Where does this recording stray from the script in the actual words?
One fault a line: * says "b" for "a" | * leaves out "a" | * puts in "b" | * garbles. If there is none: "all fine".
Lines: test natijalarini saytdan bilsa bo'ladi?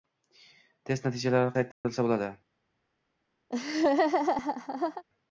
all fine